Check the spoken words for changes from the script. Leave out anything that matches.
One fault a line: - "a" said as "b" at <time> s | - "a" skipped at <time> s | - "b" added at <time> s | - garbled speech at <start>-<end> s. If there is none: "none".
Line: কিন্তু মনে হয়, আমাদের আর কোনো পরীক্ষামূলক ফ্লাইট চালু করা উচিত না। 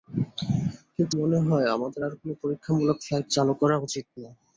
none